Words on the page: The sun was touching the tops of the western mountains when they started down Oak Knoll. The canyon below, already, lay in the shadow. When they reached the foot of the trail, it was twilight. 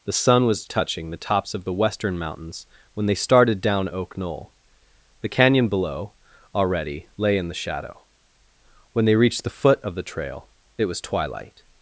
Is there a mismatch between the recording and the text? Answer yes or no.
no